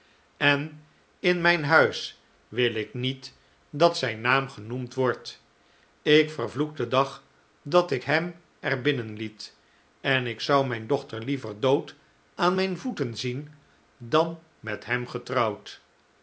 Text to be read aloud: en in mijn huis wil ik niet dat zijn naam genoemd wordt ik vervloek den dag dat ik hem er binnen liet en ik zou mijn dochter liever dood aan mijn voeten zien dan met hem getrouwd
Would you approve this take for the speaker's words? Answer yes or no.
yes